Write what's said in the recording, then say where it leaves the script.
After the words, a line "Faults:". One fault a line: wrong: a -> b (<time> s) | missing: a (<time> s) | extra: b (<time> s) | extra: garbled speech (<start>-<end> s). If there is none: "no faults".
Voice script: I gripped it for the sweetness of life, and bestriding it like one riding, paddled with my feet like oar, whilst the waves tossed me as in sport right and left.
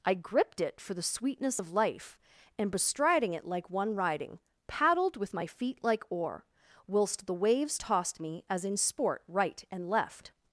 I gripped it for the sweetness of life, and bestriding it like one riding, paddled with my feet like oar, whilst the waves tossed me as in sport right and left.
Faults:
no faults